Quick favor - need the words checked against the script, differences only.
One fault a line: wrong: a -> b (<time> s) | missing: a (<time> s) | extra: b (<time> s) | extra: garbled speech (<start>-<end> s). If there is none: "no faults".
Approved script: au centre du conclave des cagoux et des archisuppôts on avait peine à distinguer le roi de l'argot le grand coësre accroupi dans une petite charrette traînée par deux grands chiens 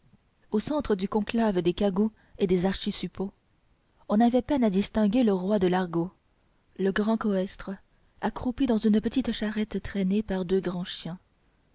no faults